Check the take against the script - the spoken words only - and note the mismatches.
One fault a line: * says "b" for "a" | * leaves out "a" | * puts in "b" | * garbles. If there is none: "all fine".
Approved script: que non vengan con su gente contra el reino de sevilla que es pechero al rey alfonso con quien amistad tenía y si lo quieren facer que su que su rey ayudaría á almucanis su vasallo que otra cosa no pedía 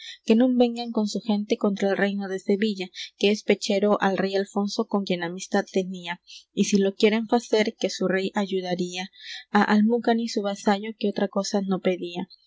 * leaves out "que su"